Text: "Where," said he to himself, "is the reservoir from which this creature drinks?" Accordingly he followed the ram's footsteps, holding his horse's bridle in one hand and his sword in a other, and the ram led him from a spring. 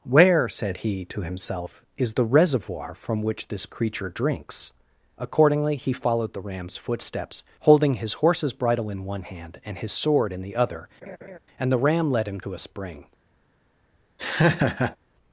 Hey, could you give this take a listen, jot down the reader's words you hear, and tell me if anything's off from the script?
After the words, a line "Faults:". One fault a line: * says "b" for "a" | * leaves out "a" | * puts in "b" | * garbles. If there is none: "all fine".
"Where," said he to himself, "is the reservoir from which this creature drinks?" Accordingly he followed the ram's footsteps, holding his horse's bridle in one hand and his sword in the other, and the ram led him to a spring.
Faults:
* says "the" for "a"
* says "to" for "from"